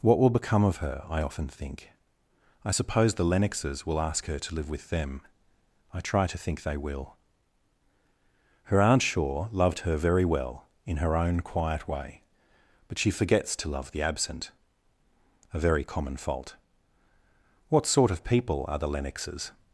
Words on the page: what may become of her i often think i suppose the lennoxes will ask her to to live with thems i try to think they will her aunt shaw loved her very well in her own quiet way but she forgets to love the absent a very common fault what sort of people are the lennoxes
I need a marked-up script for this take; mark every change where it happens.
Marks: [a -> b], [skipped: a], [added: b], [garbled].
what [may -> will] become of her i often think i suppose the lennoxes will ask her to [skipped: to] live with [thems -> them] i try to think they will her aunt shaw loved her very well in her own quiet way but she forgets to love the absent a very common fault what sort of people are the lennoxes